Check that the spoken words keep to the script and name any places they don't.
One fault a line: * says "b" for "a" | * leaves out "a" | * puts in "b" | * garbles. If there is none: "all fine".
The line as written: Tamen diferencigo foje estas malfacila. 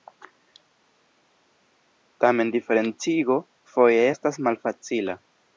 all fine